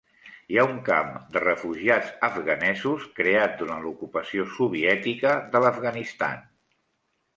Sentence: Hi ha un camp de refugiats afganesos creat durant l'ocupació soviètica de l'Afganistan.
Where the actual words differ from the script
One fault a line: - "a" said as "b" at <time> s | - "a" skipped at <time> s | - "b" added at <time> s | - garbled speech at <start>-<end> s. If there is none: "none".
none